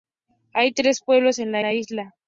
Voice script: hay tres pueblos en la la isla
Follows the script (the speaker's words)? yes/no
yes